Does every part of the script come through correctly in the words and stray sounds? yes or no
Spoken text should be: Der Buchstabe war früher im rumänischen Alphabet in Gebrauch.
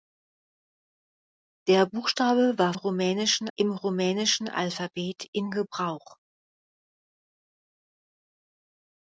no